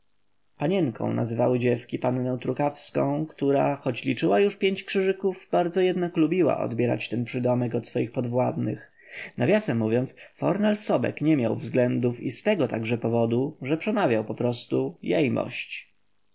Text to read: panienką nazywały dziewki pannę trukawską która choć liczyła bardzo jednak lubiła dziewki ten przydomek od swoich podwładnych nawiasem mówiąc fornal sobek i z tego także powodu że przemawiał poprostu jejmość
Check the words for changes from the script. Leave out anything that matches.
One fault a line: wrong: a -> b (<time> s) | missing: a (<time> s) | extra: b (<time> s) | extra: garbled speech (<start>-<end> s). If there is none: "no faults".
extra: już pięć krzyżyków (4.4 s)
wrong: dziewki -> odbierać (6.6 s)
extra: nie miał względów (11.2 s)